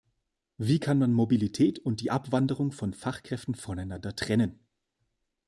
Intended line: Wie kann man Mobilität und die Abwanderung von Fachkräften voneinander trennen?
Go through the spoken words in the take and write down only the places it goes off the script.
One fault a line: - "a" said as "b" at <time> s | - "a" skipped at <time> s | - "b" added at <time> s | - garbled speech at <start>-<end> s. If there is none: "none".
none